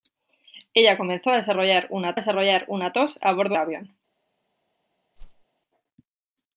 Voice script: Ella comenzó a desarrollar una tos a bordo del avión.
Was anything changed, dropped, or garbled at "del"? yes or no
yes